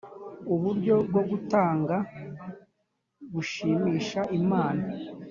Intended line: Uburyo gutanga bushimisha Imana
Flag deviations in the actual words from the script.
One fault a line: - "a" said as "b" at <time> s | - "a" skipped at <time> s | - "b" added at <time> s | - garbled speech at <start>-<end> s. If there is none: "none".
- "bwo" added at 1.1 s